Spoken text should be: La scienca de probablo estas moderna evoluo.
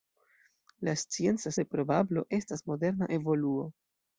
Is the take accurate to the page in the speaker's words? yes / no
yes